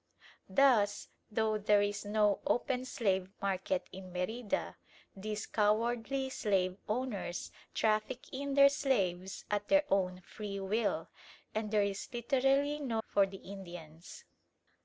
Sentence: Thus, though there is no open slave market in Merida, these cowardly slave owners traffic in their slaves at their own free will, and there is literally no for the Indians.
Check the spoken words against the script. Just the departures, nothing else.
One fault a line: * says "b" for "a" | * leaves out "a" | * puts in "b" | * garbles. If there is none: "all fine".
all fine